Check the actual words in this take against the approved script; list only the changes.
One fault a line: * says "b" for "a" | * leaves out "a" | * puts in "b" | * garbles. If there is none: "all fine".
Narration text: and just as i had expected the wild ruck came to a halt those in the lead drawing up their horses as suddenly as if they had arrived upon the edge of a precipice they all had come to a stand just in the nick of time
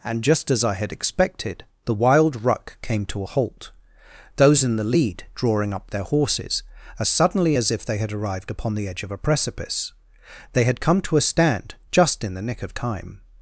* leaves out "all"